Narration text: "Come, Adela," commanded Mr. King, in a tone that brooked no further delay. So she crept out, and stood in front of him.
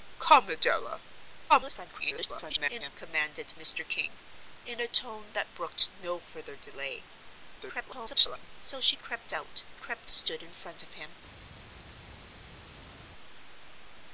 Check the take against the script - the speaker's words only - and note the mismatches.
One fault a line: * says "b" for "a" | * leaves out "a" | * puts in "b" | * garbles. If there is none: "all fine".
* garbles
* garbles
* says "crept" for "and"